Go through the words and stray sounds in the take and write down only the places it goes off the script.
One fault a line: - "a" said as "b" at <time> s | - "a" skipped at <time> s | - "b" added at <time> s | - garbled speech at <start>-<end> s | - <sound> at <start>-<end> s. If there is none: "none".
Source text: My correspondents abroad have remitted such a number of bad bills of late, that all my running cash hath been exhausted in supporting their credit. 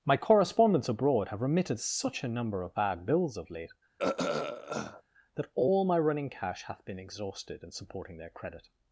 - throat clearing at 4.0-5.0 s